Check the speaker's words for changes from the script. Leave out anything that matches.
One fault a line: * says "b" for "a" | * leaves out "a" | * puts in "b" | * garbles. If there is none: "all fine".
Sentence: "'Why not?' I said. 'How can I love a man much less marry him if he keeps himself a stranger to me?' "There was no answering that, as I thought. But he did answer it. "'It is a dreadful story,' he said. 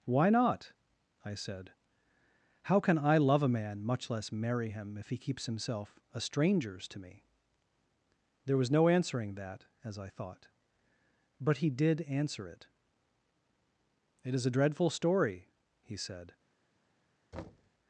* says "strangers" for "stranger"